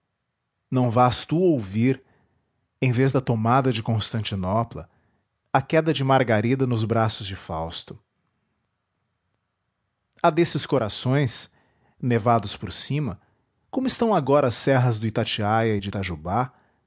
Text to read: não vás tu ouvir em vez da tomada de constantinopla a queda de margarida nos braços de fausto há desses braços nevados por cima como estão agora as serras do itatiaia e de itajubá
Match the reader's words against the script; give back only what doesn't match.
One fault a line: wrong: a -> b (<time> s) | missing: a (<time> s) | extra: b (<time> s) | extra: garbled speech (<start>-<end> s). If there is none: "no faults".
wrong: braços -> corações (10.7 s)